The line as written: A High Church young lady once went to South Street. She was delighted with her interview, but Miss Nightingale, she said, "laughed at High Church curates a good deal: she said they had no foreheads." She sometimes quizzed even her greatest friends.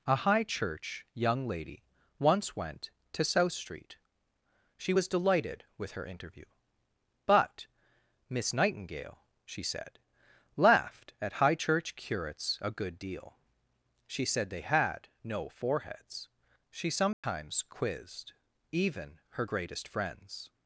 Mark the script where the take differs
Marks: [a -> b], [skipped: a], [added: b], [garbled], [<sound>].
A High Church young lady once went to South Street. She was delighted with her interview, but Miss Nightingale, she said, "laughed at High Church curates a good deal: she said they had no foreheads." She sometimes [dropout] quizzed even her greatest friends.